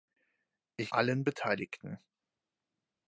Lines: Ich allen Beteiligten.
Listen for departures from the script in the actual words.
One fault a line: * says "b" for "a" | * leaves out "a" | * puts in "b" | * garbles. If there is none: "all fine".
all fine